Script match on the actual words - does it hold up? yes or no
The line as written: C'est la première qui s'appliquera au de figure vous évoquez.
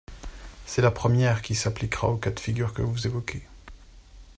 no